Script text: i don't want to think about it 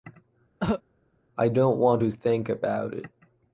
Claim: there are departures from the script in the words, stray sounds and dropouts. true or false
true